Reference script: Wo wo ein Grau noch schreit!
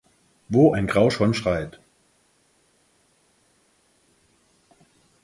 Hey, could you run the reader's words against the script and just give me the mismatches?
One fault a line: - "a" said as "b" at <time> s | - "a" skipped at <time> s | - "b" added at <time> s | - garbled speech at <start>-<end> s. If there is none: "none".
- "wo" skipped at 0.7 s
- "noch" said as "schon" at 1.1 s